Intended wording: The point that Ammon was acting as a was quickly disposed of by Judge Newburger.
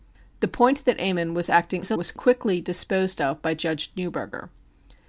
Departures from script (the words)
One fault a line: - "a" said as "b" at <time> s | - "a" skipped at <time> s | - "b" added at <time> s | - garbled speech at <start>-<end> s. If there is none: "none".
none